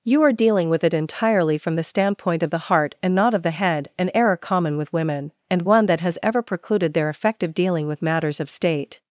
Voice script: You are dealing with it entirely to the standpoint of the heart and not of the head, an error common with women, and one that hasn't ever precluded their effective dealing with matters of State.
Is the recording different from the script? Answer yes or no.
yes